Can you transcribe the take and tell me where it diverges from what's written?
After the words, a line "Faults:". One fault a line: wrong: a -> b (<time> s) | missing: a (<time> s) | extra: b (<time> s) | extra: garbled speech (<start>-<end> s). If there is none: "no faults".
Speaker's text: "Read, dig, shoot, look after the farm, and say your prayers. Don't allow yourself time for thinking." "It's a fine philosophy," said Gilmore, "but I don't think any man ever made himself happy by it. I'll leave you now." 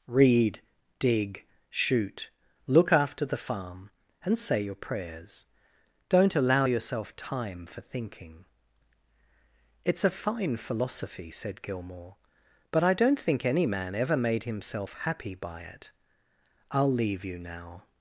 "Read, dig, shoot, look after the farm, and say your prayers. Don't allow yourself time for thinking." "It's a fine philosophy," said Gilmore, "but I don't think any man ever made himself happy by it. I'll leave you now."
Faults:
no faults